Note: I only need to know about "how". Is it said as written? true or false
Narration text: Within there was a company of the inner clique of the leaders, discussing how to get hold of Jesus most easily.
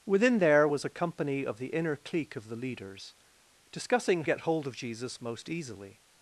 false